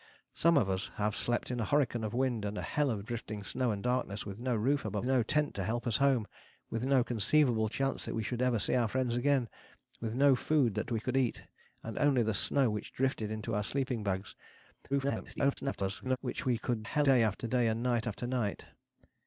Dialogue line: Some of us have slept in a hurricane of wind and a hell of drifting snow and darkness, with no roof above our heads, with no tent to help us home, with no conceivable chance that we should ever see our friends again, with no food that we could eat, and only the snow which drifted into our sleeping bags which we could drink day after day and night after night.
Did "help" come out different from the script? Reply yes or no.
no